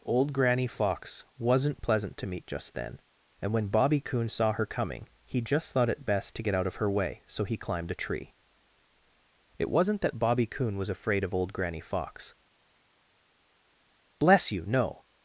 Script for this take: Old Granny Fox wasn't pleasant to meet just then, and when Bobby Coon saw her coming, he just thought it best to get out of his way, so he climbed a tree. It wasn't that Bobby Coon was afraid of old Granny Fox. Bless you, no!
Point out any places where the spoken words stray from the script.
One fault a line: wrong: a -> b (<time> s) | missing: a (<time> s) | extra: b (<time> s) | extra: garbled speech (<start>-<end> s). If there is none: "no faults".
wrong: his -> her (6.8 s)